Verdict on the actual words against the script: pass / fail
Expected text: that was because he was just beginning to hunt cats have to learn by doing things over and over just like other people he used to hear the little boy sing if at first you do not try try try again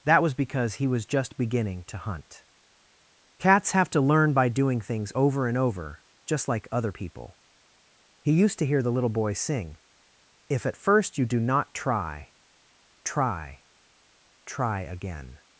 pass